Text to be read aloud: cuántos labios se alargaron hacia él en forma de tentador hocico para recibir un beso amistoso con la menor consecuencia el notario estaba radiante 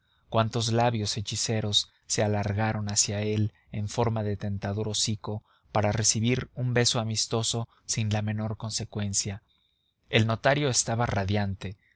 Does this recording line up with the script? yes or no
no